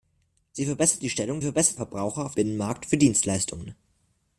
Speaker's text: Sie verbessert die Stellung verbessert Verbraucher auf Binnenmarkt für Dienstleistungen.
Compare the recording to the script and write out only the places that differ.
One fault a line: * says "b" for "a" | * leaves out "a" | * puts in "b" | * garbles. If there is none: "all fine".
all fine